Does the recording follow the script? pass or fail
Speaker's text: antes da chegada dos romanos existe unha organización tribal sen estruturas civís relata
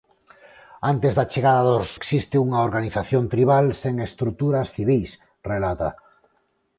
fail